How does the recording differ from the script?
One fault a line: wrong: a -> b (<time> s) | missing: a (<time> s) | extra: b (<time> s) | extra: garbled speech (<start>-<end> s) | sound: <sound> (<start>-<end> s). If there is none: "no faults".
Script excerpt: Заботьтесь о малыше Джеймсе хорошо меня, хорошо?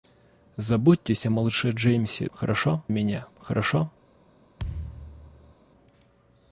sound: thud (4.6-5.6 s)